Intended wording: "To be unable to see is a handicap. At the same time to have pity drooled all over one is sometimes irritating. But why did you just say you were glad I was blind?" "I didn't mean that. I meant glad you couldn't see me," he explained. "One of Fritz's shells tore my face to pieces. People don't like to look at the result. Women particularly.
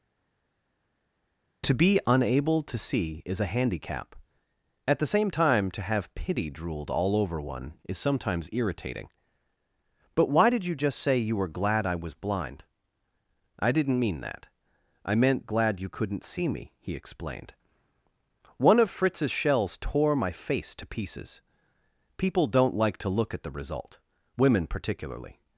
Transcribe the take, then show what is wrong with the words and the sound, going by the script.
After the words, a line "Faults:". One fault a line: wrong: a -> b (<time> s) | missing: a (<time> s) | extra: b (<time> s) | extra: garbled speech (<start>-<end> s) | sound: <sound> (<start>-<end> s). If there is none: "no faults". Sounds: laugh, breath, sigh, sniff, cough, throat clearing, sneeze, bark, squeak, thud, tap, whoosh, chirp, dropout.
"To be unable to see is a handicap. At the same time to have pity drooled all over one is sometimes irritating. But why did you just say you were glad I was blind?" "I didn't mean that. I meant glad you couldn't see me," he explained. "One of Fritz's shells tore my face to pieces. People don't like to look at the result. Women particularly.
Faults:
no faults